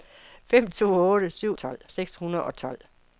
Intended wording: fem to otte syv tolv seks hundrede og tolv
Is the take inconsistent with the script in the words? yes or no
no